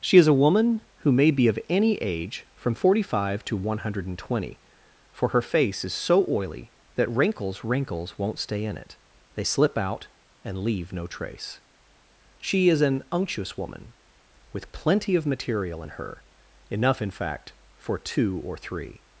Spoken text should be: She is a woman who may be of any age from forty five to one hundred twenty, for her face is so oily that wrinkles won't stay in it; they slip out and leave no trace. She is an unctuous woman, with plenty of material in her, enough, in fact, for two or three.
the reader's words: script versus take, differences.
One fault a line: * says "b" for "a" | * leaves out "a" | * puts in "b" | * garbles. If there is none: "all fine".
* puts in "wrinkles"